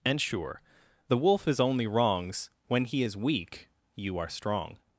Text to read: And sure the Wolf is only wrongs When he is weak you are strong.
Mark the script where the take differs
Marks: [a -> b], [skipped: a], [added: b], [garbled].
And sure the Wolf is only wrongs When he is weak you are strong.